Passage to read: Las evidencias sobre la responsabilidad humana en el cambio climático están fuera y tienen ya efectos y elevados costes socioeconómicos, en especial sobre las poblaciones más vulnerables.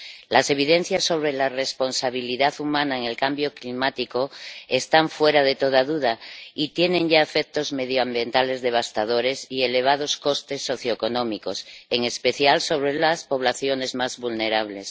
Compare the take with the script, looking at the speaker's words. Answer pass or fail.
fail